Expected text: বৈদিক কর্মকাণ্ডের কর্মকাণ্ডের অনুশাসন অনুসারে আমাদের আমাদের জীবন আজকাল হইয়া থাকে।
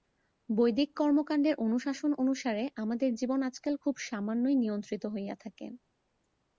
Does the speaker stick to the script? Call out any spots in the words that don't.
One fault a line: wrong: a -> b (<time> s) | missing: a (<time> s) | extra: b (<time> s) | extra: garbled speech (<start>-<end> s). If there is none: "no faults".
missing: কর্মকাণ্ডের (1.6 s)
missing: আমাদের (3.1 s)
extra: খুব সামান্যই নিয়ন্ত্রিত (3.8 s)